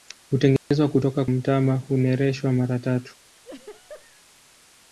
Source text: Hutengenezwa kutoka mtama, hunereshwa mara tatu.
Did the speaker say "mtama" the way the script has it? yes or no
yes